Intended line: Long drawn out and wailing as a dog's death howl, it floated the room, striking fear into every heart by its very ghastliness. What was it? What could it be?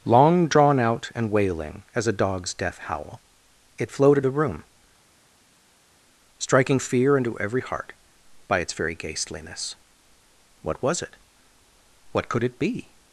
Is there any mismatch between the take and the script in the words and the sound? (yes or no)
no